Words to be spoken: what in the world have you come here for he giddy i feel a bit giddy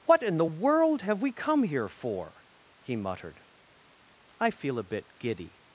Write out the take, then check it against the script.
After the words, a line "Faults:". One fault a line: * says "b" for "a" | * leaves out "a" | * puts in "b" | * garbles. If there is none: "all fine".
what in the world have we come here for he muttered i feel a bit giddy
Faults:
* says "we" for "you"
* says "muttered" for "giddy"